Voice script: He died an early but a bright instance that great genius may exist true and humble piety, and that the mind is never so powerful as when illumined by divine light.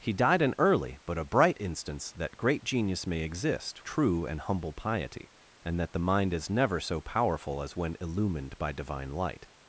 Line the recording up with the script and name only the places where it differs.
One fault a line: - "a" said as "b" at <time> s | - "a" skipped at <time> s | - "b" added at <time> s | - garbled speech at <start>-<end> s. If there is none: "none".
none